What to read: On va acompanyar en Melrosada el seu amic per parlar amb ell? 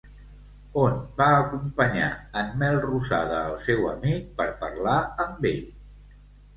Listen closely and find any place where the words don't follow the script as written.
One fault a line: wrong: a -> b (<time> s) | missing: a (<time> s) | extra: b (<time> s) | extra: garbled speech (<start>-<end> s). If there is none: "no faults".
no faults